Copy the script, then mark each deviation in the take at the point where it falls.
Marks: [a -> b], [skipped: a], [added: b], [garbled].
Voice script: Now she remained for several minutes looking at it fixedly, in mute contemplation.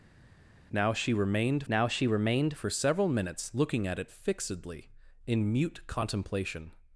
Now she remained [added: now she remained] for several minutes looking at it fixedly, in mute contemplation.